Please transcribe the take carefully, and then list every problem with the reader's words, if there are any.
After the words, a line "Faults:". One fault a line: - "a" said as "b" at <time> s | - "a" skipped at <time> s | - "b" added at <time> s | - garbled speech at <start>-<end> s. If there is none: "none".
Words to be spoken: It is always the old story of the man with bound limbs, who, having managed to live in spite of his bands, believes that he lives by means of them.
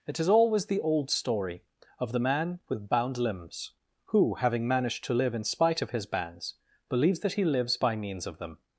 It is always the old story of the man with bound limbs, who, having managed to live in spite of his bands, believes that he lives by means of them.
Faults:
none